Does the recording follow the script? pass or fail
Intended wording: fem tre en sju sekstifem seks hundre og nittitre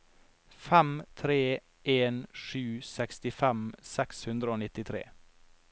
pass